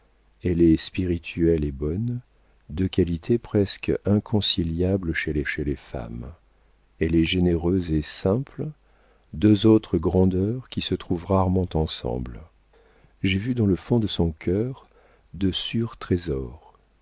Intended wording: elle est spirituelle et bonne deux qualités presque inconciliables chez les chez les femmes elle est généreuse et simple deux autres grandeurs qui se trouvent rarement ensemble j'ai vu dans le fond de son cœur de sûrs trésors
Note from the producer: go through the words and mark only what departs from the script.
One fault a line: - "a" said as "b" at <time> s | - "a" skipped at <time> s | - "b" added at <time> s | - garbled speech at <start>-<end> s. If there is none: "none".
none